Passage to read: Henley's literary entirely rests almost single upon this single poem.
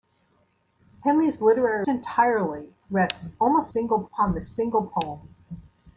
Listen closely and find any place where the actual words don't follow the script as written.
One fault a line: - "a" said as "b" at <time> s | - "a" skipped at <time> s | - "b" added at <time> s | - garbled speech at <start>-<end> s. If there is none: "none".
none